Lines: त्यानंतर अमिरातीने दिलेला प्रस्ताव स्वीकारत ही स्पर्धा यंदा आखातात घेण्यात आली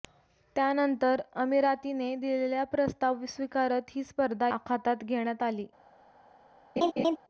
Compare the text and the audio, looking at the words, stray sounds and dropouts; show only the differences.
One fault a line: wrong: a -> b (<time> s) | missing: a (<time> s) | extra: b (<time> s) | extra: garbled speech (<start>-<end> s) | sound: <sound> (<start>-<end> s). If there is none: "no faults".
missing: यंदा (4.5 s)
sound: laugh (6.8-7.2 s)